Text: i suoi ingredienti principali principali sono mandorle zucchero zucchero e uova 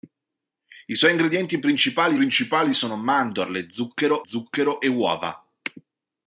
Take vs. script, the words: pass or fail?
pass